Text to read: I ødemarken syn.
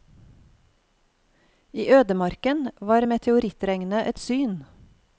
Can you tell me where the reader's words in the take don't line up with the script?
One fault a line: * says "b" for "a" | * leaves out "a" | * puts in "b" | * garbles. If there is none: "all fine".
* puts in "var meteorittregnet et"